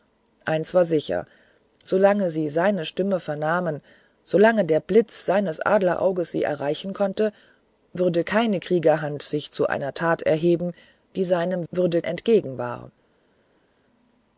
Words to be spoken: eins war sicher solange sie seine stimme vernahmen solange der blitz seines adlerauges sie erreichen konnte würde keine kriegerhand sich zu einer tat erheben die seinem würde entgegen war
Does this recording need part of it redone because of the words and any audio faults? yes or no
no